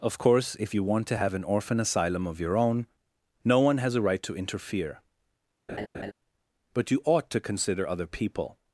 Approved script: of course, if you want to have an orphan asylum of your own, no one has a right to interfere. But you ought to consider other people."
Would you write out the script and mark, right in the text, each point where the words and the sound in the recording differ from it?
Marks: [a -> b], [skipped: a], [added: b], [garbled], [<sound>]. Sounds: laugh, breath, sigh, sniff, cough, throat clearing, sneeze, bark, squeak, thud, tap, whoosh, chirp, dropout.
of course, if you want to have an orphan asylum of your own, no one has a right to interfere. [laugh] But you ought to consider other people."